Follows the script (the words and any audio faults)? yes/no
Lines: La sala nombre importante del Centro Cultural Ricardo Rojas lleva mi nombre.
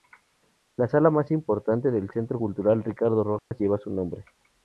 no